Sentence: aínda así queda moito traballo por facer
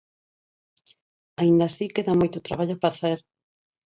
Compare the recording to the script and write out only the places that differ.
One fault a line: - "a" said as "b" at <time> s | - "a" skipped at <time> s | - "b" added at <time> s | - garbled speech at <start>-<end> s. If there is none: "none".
- "por" skipped at 2.7 s